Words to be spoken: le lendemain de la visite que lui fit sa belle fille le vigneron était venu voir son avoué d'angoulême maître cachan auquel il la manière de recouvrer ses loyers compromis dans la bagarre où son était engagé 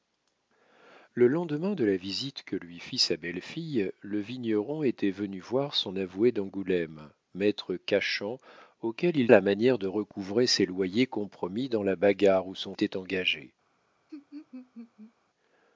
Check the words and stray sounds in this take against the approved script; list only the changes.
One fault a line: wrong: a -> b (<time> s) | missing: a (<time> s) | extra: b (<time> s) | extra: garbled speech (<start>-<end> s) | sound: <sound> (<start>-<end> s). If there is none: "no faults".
sound: laugh (14.1-15.1 s)